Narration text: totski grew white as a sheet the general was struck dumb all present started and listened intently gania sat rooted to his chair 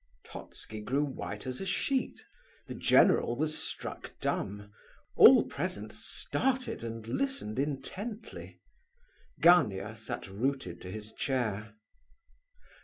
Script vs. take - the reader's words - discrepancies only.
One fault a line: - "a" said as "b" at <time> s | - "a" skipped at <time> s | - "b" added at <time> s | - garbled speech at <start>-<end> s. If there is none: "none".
none